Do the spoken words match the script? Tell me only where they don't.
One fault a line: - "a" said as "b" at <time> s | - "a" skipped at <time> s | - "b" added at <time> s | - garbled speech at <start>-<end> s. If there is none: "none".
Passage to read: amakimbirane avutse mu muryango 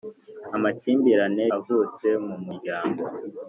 none